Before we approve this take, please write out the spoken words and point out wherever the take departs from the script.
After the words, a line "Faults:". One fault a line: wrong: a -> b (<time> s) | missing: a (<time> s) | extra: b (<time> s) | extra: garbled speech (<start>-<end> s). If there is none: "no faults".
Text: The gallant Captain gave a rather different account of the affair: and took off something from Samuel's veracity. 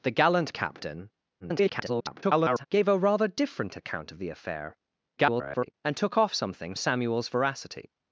The gallant Captain [garbled] gave a rather different account of the affair: [garbled] and took off something Samuel's veracity.
Faults:
extra: garbled speech (1.4-2.7 s)
extra: garbled speech (5.2-5.7 s)
missing: from (6.7 s)